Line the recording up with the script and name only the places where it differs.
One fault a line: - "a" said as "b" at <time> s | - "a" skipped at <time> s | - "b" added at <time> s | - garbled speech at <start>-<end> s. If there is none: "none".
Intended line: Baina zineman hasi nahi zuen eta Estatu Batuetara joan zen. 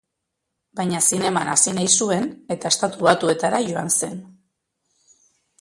none